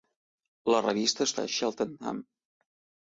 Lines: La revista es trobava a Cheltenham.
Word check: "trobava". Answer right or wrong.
wrong